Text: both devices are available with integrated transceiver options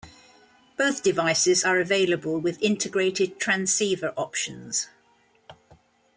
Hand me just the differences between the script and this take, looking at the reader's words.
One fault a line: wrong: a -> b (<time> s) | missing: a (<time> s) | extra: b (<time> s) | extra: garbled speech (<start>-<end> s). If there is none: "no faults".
no faults